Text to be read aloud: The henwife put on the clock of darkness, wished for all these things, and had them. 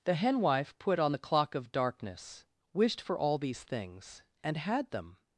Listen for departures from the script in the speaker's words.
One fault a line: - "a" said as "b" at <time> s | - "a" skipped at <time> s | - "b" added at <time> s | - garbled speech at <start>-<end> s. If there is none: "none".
none